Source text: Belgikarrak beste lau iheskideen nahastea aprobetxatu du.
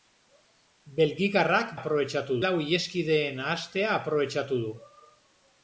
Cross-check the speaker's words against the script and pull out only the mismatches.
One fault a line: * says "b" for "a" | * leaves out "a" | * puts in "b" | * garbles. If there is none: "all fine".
* says "aprobetxatu" for "beste"